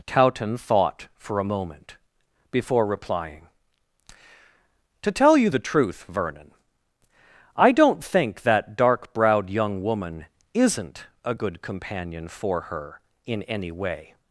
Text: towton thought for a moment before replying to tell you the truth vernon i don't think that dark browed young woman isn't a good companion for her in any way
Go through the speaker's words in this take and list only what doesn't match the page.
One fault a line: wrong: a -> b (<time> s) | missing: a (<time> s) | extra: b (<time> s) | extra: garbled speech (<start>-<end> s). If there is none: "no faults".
no faults